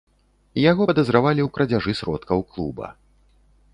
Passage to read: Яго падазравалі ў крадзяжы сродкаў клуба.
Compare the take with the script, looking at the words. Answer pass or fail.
pass